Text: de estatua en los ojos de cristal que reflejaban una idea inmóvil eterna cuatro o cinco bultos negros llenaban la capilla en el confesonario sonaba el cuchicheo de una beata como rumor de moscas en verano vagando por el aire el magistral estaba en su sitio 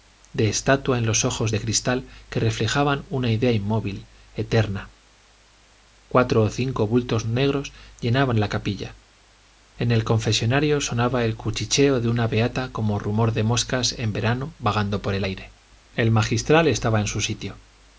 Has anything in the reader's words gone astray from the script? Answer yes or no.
no